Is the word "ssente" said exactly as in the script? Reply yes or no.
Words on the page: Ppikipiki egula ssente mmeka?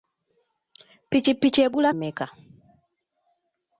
no